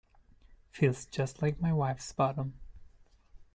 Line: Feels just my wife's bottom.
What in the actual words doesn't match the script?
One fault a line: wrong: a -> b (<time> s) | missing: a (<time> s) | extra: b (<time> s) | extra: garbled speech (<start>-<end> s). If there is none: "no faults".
extra: like (1.4 s)